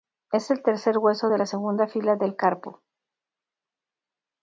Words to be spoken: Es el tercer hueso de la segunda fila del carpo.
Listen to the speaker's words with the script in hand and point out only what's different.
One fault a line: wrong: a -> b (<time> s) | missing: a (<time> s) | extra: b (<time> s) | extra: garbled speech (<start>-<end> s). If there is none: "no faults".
no faults